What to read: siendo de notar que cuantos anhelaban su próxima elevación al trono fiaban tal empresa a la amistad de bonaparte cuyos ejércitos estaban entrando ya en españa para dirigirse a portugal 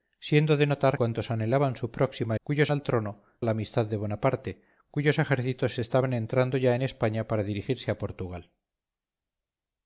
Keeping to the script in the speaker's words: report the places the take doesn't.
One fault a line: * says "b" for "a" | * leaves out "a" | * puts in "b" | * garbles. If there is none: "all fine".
* leaves out "que"
* says "cuyos" for "elevación"
* leaves out "fiaban tal empresa"